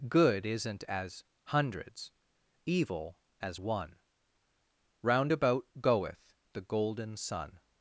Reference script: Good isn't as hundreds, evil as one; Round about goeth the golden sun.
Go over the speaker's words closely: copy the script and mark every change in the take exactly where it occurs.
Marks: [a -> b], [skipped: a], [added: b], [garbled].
Good isn't as hundreds, evil as one; Round about goeth the golden sun.